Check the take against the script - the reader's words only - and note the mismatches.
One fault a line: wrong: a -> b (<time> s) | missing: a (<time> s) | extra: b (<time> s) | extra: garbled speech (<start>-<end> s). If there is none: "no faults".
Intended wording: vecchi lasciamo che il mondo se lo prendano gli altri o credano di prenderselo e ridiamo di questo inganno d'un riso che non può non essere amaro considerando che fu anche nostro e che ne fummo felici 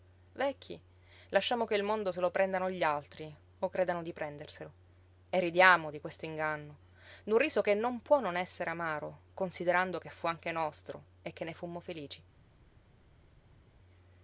no faults